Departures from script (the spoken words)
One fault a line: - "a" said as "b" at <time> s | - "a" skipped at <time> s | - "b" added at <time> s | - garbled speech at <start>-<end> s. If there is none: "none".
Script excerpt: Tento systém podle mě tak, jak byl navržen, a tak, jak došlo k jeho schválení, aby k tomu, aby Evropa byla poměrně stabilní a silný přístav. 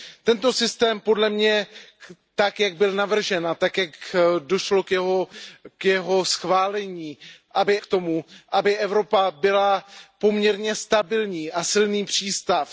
none